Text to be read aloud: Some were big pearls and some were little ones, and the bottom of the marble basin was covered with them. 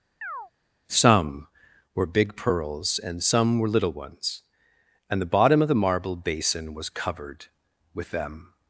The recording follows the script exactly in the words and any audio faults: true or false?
false